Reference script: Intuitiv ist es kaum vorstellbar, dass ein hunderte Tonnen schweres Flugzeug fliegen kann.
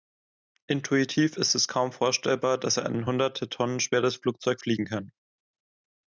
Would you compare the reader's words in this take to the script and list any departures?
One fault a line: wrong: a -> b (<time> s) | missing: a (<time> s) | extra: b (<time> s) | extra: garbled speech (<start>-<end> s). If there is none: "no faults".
no faults